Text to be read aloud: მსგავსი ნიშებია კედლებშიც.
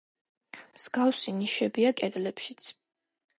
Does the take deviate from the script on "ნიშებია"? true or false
false